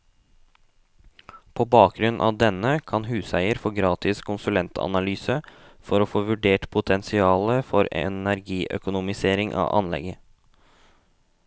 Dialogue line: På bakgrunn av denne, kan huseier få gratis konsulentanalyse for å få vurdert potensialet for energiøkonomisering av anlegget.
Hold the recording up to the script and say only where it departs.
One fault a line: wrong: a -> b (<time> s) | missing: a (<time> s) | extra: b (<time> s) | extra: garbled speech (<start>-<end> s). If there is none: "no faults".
no faults